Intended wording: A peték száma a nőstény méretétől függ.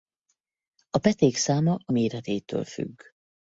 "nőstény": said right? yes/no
no